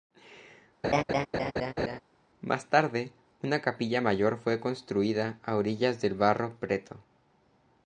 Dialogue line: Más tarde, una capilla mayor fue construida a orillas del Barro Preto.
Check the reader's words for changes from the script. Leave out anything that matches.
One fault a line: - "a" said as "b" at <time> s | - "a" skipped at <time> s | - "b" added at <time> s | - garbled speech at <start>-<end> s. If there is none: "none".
none